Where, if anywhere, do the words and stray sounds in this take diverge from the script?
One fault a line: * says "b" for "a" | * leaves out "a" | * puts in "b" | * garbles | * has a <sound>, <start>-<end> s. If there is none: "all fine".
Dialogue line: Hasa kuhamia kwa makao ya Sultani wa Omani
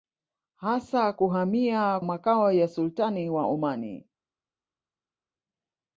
* leaves out "kwa"